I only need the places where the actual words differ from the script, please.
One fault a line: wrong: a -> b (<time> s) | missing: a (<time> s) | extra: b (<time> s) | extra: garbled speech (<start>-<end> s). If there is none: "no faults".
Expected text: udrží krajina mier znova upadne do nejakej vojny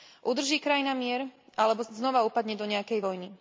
extra: alebo (1.6 s)